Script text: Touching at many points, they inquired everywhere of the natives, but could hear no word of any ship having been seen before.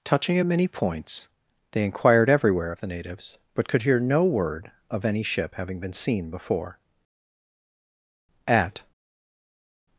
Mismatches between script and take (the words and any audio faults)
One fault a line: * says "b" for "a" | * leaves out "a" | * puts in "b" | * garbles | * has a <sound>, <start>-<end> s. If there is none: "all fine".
* puts in "At"